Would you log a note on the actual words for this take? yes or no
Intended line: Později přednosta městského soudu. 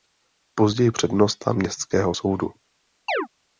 no